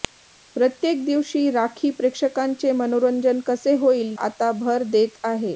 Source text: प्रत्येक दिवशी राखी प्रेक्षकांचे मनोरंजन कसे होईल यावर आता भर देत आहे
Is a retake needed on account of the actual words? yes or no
yes